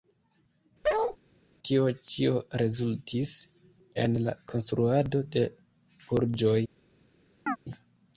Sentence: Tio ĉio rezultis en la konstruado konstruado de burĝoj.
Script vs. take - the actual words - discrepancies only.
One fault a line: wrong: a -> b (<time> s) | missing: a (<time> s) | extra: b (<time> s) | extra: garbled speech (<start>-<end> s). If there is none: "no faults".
missing: konstruado (5.3 s)